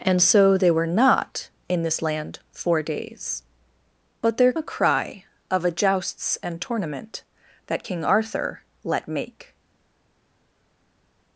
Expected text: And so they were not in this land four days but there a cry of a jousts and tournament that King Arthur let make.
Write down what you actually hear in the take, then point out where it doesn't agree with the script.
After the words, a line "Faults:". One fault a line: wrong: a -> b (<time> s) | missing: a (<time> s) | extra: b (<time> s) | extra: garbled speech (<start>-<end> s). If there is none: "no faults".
And so they were not in this land four days but there a cry of a jousts and tournament that King Arthur let make.
Faults:
no faults